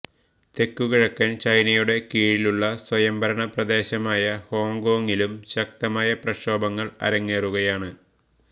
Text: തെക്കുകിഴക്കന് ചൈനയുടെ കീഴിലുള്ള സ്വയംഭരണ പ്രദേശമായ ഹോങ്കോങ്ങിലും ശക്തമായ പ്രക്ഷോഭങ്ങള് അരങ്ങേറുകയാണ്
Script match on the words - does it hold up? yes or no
yes